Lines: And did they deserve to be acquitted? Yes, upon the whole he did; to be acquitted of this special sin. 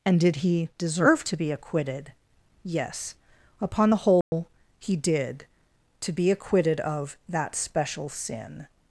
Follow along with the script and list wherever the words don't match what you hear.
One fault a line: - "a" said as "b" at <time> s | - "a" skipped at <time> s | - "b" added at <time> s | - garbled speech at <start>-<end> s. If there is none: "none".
- "they" said as "he" at 0.4 s
- "this" said as "that" at 7.3 s